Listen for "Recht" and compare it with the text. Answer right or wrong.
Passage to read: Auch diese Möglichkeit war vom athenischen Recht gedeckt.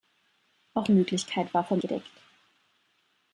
wrong